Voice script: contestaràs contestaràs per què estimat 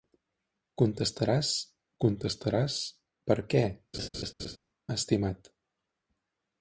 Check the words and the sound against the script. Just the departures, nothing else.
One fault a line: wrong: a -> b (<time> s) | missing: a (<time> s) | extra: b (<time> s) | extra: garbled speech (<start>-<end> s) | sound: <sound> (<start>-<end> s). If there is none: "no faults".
sound: laugh (3.9-4.6 s)